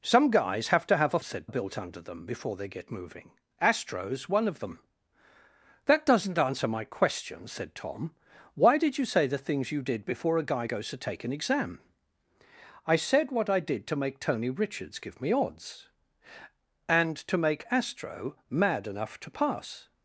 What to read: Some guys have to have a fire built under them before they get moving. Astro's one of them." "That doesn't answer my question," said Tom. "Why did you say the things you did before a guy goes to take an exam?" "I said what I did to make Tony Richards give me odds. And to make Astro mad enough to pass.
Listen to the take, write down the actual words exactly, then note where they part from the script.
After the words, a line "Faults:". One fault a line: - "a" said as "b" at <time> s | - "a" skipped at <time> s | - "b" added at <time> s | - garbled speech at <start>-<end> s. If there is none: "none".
Some guys have to have a said built under them before they get moving. Astro's one of them." "That doesn't answer my question," said Tom. "Why did you say the things you did before a guy goes to take an exam?" "I said what I did to make Tony Richards give me odds. And to make Astro mad enough to pass.
Faults:
- "fire" said as "said" at 1.2 s